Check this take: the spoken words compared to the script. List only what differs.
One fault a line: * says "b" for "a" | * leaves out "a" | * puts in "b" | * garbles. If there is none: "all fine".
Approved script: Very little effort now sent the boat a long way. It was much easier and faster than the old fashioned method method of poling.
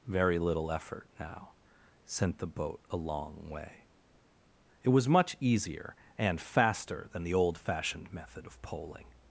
* leaves out "method"